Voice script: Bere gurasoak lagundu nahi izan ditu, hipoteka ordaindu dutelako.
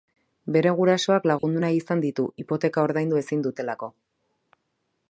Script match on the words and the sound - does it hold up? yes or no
no